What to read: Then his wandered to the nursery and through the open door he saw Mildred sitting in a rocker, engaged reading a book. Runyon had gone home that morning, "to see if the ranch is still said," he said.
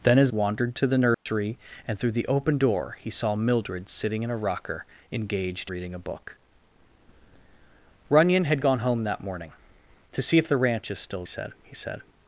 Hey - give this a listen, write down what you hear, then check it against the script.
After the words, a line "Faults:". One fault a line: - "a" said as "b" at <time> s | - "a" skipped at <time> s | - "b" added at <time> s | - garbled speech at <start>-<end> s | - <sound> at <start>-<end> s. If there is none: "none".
Then his wandered to the nursery and through the open door he saw Mildred sitting in a rocker, engaged reading a book. Runyon had gone home that morning, "to see if the ranch is still said," he said.
Faults:
- dropout at 1.1-1.3 s